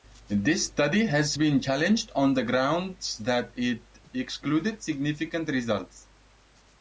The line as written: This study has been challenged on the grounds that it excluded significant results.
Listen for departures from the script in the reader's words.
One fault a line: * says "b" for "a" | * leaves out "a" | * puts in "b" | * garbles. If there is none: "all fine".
all fine